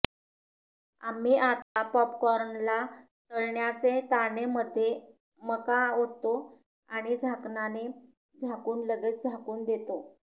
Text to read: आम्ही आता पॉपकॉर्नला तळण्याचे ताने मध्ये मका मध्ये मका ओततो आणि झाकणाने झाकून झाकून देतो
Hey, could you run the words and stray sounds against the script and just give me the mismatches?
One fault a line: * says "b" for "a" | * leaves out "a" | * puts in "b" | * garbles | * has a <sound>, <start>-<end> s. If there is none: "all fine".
* has a dropout, 1.6-1.8 s
* leaves out "मध्ये मका"
* puts in "लगेच"